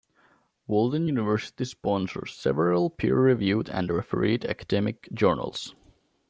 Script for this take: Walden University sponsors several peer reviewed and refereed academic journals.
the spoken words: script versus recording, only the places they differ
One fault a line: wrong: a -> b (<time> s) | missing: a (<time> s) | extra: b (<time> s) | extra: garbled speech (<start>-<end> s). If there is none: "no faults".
no faults